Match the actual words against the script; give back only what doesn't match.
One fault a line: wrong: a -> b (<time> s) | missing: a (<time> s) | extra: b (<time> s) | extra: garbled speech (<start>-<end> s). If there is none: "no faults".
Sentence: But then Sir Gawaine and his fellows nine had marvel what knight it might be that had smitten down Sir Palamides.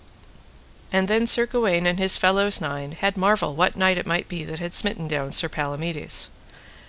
wrong: But -> And (0.9 s)